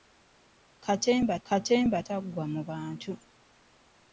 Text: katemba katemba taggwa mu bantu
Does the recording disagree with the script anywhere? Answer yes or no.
no